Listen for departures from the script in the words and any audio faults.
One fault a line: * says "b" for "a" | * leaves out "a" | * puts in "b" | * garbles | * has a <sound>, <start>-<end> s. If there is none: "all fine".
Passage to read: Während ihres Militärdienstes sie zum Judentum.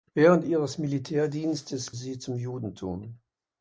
all fine